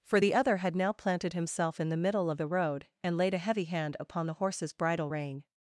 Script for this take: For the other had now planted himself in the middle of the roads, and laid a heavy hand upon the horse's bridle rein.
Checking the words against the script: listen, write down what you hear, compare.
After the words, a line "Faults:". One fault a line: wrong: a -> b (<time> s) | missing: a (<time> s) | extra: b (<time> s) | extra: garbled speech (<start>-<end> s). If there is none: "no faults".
For the other had now planted himself in the middle of the road, and laid a heavy hand upon the horse's bridle rein.
Faults:
wrong: roads -> road (2.5 s)